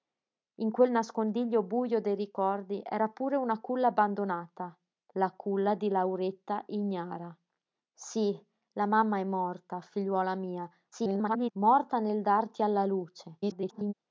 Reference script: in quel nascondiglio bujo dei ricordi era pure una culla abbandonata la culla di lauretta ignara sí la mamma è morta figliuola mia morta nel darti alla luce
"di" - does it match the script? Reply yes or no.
yes